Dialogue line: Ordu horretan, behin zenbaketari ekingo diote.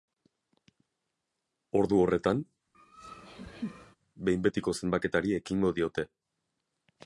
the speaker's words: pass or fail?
fail